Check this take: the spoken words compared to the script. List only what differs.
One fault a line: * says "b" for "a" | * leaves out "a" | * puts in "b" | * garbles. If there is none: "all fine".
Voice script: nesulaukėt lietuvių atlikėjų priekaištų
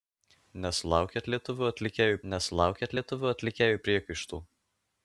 * puts in "nesulaukėt lietuvių atlikėjų"